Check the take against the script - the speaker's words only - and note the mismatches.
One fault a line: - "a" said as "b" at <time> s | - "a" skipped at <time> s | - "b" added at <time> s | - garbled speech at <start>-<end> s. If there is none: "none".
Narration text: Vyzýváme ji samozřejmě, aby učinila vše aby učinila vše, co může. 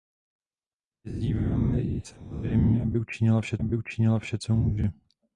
none